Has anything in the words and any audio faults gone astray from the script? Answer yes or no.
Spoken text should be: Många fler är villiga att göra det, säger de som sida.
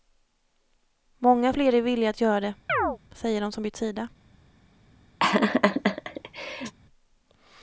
yes